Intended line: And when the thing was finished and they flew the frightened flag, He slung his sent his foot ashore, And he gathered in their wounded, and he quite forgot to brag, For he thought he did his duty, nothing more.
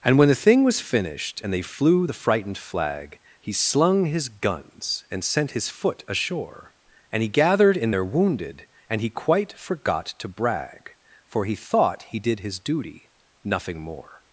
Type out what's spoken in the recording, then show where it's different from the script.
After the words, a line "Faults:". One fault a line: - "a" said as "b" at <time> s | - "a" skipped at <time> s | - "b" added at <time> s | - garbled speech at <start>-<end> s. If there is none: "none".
And when the thing was finished and they flew the frightened flag, He slung his guns and sent his foot ashore, And he gathered in their wounded, and he quite forgot to brag, For he thought he did his duty, nothing more.
Faults:
- "guns and" added at 4.3 s